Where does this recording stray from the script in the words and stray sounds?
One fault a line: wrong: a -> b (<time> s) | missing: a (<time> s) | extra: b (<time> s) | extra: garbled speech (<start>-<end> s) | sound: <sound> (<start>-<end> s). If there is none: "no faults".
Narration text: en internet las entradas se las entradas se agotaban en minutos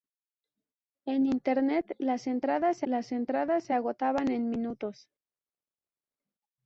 no faults